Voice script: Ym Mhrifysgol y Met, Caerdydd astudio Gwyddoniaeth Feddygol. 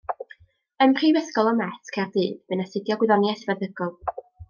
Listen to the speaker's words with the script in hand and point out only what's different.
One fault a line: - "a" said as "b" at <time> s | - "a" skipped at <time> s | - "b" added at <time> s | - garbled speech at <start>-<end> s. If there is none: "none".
- "bu'n" added at 2.5 s